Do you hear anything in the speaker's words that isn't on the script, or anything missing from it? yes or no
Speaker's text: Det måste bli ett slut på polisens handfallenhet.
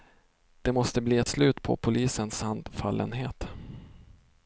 no